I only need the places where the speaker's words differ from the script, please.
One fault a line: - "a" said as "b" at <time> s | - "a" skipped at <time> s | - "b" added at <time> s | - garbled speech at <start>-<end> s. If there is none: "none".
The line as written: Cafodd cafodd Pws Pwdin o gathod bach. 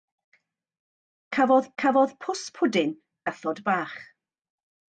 none